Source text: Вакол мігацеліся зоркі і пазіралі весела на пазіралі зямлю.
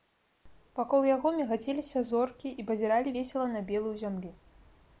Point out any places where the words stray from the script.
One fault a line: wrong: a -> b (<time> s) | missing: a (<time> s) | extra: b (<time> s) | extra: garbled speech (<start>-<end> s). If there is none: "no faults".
extra: яго (1.1 s)
wrong: пазіралі -> белую (3.7 s)